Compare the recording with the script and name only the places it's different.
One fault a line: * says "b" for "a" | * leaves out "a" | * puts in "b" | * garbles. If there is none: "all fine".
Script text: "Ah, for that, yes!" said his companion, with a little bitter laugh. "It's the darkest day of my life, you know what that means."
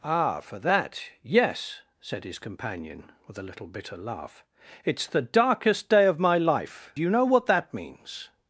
all fine